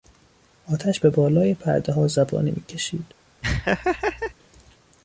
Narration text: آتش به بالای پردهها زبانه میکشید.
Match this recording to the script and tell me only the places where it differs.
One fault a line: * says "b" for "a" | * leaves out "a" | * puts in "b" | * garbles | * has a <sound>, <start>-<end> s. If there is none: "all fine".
* has a laugh, 3.4-4.3 s